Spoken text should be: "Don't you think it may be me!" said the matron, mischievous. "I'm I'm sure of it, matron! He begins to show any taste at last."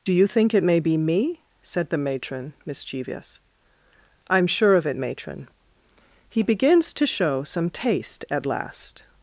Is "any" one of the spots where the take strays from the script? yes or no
yes